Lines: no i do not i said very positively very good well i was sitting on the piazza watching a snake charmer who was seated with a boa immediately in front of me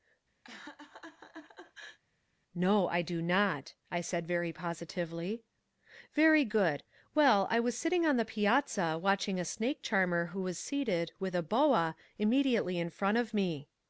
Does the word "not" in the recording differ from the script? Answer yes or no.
no